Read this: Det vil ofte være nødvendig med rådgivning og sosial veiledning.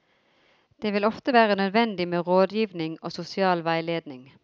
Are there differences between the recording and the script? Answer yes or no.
no